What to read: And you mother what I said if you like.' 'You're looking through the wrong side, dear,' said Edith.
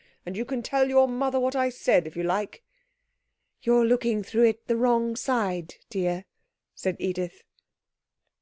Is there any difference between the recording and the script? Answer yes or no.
yes